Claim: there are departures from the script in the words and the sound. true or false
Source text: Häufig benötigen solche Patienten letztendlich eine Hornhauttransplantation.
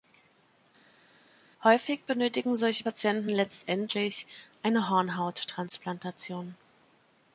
false